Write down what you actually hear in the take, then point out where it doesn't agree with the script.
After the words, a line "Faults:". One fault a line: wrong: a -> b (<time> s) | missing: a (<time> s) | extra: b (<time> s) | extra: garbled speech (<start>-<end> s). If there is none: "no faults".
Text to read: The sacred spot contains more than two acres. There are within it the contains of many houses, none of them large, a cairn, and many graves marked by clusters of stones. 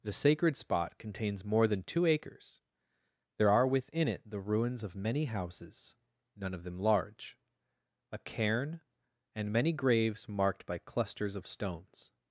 The sacred spot contains more than two acres. There are within it the ruins of many houses, none of them large, a cairn, and many graves marked by clusters of stones.
Faults:
wrong: contains -> ruins (4.4 s)